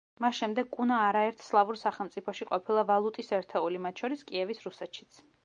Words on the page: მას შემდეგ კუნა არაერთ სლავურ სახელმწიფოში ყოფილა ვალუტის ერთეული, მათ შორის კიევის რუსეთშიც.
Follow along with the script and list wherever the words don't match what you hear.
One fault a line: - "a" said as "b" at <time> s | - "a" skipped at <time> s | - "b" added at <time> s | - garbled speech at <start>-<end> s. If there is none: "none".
none